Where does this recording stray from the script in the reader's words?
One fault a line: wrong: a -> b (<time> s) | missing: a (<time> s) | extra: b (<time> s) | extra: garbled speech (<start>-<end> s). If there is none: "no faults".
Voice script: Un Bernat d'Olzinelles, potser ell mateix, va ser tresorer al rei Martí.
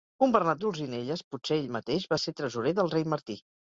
wrong: al -> del (2.8 s)